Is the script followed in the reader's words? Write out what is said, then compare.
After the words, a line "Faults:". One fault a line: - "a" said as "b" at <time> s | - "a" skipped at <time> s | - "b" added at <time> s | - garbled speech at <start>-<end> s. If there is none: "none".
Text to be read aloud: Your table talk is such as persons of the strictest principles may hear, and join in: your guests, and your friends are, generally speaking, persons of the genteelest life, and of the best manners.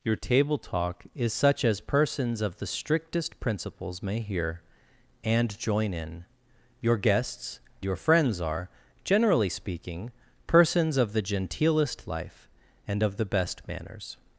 Your table talk is such as persons of the strictest principles may hear, and join in: your guests, your friends are, generally speaking, persons of the genteelest life, and of the best manners.
Faults:
- "and" skipped at 7.6 s